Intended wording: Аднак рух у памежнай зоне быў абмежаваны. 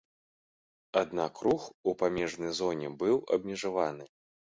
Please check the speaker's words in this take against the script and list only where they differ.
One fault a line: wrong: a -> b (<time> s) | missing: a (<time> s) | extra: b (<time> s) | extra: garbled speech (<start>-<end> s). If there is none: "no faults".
no faults